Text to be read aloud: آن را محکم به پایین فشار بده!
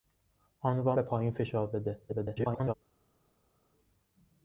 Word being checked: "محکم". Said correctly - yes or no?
no